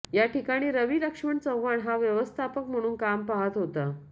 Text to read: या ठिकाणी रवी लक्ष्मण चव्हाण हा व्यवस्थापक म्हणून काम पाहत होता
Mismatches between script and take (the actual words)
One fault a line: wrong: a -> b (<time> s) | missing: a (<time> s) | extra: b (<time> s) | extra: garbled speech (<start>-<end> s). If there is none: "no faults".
no faults